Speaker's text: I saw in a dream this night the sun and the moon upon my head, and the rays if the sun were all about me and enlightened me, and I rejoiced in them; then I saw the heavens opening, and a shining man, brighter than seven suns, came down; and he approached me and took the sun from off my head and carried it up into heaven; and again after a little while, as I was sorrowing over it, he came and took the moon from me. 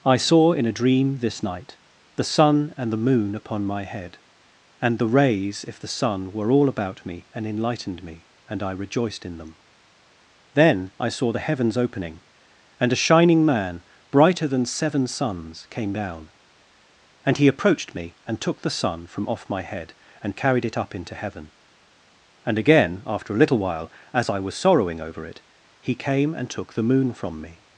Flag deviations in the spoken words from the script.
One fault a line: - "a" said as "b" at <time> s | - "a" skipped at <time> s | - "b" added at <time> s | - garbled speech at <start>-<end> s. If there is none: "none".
none